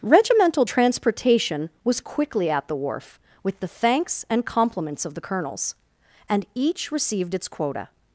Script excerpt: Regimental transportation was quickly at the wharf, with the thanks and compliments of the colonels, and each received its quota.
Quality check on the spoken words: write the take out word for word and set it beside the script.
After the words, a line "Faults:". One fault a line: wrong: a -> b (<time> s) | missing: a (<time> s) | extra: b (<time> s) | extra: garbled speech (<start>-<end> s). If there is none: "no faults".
Regimental transportation was quickly at the wharf, with the thanks and compliments of the colonels, and each received its quota.
Faults:
no faults